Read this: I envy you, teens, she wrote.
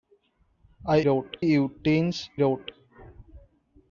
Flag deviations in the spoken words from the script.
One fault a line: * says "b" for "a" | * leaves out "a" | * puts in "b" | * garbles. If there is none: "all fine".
* says "wrote" for "envy"
* leaves out "she"